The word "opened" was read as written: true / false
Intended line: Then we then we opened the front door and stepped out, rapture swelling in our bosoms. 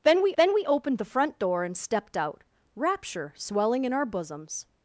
true